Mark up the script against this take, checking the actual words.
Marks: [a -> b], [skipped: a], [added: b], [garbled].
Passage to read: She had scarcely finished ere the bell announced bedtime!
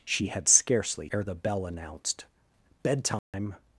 She had scarcely [skipped: finished] ere the bell announced bedtime!